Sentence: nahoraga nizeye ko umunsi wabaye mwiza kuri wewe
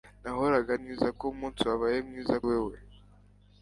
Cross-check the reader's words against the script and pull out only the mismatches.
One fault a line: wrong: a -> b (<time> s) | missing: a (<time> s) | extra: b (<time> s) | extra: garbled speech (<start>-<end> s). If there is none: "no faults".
wrong: nizeye -> mwiza (0.8 s)
missing: kuri (2.3 s)